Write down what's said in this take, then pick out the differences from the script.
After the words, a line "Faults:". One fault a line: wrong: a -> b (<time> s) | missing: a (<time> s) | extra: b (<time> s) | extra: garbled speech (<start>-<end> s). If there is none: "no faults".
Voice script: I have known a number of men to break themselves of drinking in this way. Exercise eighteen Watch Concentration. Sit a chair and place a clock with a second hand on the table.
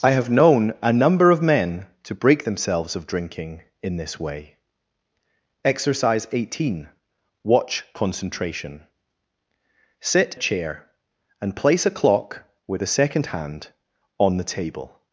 I have known a number of men to break themselves of drinking in this way. Exercise eighteen Watch Concentration. Sit a chair and place a clock with a second hand on the table.
Faults:
no faults